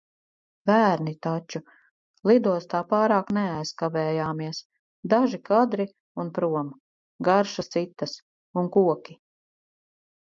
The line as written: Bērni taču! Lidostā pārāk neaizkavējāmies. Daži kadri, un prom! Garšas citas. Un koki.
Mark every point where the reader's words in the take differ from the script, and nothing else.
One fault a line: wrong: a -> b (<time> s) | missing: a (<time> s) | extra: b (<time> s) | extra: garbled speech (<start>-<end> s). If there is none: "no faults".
no faults